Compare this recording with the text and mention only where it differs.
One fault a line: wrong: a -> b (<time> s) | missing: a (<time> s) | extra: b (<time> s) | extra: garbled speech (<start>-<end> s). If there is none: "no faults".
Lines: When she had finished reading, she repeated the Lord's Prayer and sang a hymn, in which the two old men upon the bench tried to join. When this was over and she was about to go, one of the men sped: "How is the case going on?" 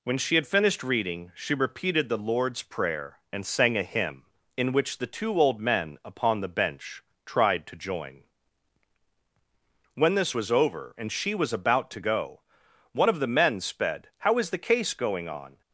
no faults